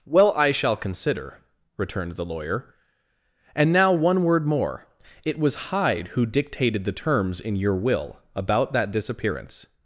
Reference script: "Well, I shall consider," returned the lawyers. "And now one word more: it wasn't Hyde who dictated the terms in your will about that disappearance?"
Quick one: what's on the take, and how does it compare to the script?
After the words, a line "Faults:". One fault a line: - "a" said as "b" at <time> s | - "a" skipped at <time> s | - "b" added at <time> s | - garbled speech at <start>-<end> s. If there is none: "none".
"Well, I shall consider," returned the lawyer. "And now one word more: it was Hyde who dictated the terms in your will about that disappearance?"
Faults:
- "lawyers" said as "lawyer" at 2.2 s
- "wasn't" said as "was" at 5.4 s